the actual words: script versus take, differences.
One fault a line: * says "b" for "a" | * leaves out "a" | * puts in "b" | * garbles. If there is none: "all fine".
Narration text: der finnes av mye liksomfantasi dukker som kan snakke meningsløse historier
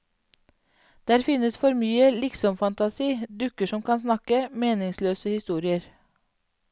* says "for" for "av"